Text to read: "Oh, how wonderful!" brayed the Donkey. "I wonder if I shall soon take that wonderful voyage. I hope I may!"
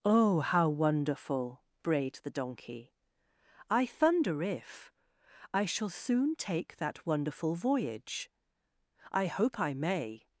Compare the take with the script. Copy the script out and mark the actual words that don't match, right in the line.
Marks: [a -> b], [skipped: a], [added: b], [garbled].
"Oh, how wonderful!" brayed the Donkey. "I [wonder -> thunder] if I shall soon take that wonderful voyage. I hope I may!"